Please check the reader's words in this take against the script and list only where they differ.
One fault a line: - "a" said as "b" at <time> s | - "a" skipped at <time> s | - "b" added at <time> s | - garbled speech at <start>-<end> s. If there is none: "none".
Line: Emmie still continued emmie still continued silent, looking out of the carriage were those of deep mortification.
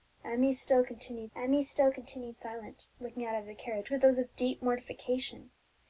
none